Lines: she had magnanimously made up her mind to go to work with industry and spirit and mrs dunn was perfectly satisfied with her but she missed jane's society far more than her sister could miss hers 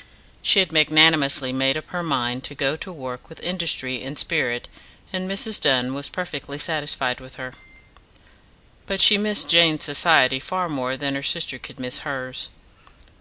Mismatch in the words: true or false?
false